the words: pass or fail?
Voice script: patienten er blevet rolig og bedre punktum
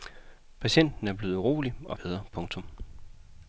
pass